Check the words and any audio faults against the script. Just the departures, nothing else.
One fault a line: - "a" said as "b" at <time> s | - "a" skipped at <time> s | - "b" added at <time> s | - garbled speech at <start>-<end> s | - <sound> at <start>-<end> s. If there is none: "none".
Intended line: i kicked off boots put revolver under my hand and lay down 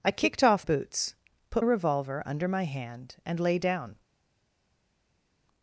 none